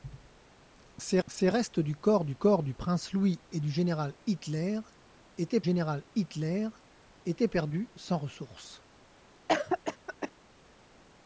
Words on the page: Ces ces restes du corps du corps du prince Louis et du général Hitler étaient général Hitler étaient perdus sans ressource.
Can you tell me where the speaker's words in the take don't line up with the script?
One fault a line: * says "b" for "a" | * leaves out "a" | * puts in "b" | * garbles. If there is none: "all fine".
all fine